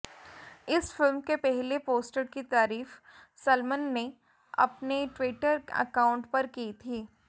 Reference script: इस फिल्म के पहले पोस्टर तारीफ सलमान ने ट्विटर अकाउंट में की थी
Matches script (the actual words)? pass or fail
fail